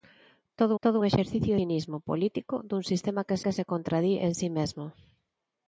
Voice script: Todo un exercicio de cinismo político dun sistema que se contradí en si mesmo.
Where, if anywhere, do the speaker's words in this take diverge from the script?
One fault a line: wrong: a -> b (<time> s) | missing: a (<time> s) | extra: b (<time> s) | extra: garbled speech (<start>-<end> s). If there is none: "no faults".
extra: todo (0.8 s)
missing: de (1.5 s)
extra: que (3.4 s)